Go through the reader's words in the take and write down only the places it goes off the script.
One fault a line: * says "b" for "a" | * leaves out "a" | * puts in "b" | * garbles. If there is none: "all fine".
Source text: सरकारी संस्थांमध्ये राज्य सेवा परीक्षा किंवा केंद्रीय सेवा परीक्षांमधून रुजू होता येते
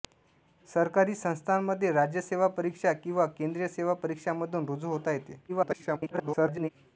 * garbles